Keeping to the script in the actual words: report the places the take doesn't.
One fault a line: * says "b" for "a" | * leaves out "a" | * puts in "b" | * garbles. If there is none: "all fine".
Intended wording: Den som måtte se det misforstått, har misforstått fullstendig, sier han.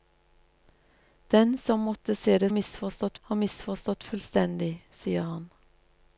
all fine